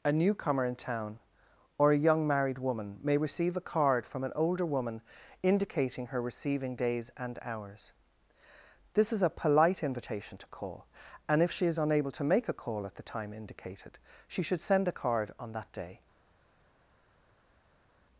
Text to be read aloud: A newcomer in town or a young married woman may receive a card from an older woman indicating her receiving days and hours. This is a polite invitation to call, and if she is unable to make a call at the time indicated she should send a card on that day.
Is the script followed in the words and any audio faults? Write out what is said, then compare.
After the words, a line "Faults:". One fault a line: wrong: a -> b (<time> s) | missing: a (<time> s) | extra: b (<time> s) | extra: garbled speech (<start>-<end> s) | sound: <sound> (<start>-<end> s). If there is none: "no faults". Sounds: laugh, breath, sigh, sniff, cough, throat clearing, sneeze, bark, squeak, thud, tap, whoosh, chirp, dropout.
A newcomer in town or a young married woman may receive a card from an older woman indicating her receiving days and hours. This is a polite invitation to call, and if she is unable to make a call at the time indicated she should send a card on that day.
Faults:
no faults